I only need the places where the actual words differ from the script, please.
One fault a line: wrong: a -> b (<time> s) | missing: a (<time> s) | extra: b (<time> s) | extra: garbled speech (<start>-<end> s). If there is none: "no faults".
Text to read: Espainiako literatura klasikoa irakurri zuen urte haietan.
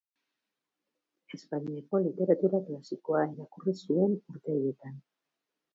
no faults